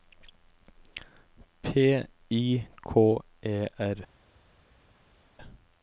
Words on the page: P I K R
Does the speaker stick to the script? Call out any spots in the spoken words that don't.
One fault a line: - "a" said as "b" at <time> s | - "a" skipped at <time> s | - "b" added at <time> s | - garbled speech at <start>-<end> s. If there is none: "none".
- "E" added at 3.4 s